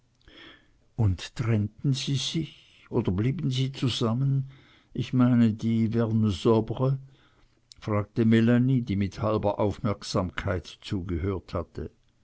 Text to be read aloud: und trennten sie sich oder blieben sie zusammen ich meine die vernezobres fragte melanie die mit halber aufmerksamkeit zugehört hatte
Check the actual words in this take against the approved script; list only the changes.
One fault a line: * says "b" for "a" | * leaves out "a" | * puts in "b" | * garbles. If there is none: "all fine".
all fine